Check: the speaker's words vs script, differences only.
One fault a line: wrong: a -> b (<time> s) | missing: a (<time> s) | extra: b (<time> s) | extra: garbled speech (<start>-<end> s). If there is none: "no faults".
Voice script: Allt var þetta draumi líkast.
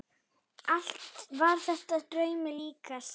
no faults